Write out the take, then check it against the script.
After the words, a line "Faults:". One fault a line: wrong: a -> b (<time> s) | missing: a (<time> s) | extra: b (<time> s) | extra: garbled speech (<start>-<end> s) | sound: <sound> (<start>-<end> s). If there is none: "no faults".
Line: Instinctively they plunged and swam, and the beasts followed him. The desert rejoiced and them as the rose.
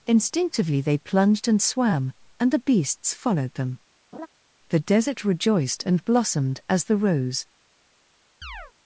Instinctively they plunged and swam, and the beasts followed them. The desert rejoiced and blossomed as the rose.
Faults:
wrong: him -> them (3.5 s)
sound: laugh (4.1-4.3 s)
wrong: them -> blossomed (6.0 s)
sound: chirp (8.4-8.7 s)